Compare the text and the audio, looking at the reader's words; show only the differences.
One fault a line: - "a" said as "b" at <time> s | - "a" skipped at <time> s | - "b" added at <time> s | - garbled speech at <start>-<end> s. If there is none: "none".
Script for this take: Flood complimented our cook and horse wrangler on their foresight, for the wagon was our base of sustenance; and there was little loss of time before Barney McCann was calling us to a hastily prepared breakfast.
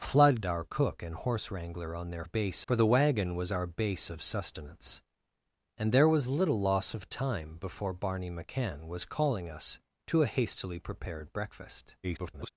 - "complimented" skipped at 0.4 s
- "foresight" said as "base" at 2.2 s
- garbled speech at 12.0-12.5 s